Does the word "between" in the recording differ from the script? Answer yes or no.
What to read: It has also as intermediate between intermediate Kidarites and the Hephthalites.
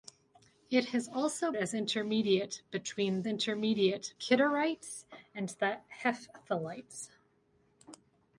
no